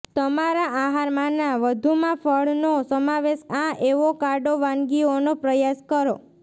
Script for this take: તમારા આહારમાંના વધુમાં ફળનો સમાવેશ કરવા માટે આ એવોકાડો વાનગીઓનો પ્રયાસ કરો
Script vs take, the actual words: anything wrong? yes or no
yes